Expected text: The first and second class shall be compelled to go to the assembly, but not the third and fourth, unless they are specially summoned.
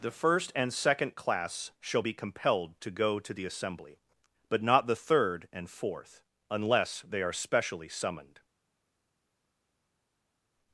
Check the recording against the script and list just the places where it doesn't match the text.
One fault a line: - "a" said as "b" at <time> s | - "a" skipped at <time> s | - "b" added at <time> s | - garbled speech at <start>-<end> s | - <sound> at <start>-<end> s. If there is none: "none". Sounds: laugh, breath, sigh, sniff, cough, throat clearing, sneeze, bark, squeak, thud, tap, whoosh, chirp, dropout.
none